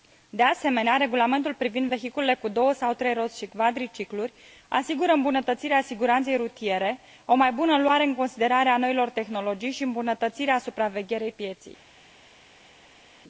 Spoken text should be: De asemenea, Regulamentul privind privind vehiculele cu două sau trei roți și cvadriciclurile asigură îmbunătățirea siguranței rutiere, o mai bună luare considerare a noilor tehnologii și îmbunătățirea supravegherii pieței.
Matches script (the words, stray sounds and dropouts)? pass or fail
fail